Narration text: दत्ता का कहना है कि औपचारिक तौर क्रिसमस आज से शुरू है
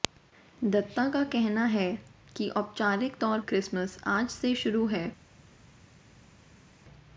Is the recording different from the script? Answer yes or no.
no